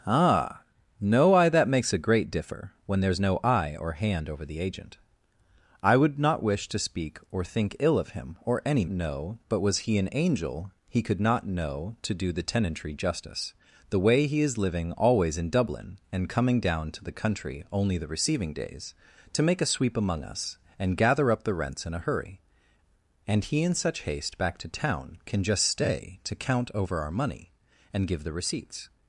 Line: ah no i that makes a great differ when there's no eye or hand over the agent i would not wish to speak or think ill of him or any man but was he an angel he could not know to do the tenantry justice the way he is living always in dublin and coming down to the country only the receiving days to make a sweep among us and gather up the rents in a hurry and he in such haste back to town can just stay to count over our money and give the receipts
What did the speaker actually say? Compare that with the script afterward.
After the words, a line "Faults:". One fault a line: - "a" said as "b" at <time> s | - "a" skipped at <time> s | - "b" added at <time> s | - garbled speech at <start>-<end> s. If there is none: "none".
ah no i that makes a great differ when there's no eye or hand over the agent i would not wish to speak or think ill of him or any know but was he an angel he could not know to do the tenantry justice the way he is living always in dublin and coming down to the country only the receiving days to make a sweep among us and gather up the rents in a hurry and he in such haste back to town can just stay to count over our money and give the receipts
Faults:
- "man" said as "know" at 8.9 s